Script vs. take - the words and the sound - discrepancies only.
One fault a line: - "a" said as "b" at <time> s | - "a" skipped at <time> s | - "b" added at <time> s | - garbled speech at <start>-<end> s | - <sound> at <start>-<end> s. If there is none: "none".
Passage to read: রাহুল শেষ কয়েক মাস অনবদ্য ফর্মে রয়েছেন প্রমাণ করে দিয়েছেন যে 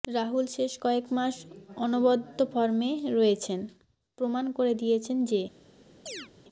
- chirp at 6.1-6.3 s